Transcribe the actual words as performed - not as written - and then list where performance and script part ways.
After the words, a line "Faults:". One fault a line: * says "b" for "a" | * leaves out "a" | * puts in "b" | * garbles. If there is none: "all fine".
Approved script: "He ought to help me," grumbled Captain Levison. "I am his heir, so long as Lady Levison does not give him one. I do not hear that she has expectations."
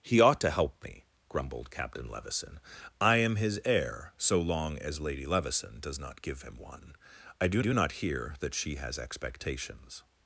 "He ought to help me," grumbled Captain Levison. "I am his heir, so long as Lady Levison does not give him one. I do do not hear that she has expectations."
Faults:
* puts in "do"